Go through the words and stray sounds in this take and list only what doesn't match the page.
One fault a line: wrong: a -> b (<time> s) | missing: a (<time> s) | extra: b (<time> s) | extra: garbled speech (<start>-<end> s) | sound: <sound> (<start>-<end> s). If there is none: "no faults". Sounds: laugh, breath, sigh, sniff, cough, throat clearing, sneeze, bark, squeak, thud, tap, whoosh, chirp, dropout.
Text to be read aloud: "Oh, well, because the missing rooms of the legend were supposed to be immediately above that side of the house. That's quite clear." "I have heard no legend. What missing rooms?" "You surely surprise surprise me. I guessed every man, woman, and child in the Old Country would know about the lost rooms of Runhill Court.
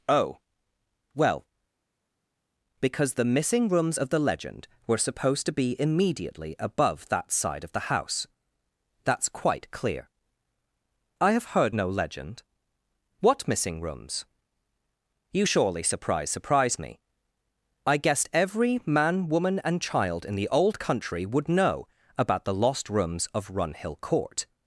no faults